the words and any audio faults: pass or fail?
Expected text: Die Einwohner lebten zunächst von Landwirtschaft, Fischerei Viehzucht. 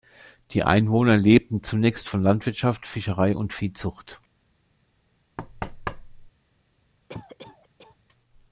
fail